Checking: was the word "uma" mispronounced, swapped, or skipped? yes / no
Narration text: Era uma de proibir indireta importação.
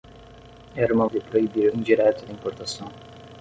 no